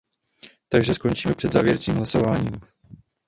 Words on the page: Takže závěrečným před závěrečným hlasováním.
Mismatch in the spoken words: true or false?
true